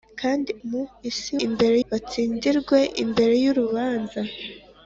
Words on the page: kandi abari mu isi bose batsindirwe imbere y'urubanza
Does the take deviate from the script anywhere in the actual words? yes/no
yes